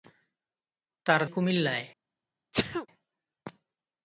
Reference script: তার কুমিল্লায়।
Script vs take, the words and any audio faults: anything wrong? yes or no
yes